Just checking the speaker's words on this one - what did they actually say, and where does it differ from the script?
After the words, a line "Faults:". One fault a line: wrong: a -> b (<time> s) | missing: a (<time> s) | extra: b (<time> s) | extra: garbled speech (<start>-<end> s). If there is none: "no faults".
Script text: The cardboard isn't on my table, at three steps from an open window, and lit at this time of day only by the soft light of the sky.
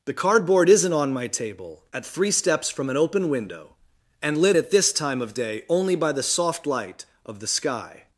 The cardboard isn't on my table, at three steps from an open window, and lit at this time of day only by the soft light of the sky.
Faults:
no faults